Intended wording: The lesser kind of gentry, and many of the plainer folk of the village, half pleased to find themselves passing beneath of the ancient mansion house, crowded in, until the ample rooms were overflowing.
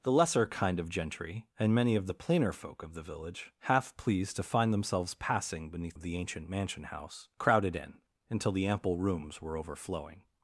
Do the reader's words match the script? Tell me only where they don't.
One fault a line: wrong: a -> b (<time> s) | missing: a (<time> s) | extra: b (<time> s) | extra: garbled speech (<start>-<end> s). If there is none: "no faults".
no faults